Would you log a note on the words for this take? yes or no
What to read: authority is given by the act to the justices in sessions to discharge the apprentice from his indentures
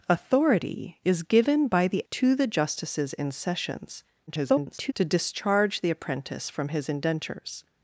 yes